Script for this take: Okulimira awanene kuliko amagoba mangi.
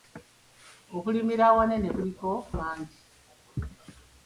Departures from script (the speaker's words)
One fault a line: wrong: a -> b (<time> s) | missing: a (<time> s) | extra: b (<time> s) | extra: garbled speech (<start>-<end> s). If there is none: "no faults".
missing: amagoba (2.3 s)